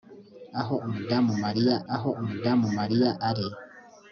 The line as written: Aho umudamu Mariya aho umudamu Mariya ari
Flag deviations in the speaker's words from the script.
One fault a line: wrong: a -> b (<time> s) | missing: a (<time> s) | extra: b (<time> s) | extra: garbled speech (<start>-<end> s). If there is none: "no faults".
no faults